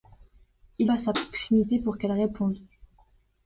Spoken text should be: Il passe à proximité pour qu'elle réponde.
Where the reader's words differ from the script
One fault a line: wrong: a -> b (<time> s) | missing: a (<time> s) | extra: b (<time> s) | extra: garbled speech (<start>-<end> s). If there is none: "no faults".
no faults